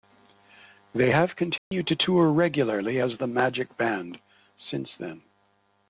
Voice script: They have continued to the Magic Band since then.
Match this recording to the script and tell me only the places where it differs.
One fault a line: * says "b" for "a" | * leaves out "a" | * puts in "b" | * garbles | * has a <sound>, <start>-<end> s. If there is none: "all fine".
* has a dropout, 1.6-1.7 s
* puts in "tour regularly as"